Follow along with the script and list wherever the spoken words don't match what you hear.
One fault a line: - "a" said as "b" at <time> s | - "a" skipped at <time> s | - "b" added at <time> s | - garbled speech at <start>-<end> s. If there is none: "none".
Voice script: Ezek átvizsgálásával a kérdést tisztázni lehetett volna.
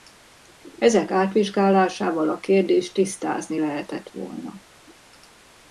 none